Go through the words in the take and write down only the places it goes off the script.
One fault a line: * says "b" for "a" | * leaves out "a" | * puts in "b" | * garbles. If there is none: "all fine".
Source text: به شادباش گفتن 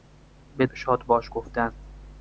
all fine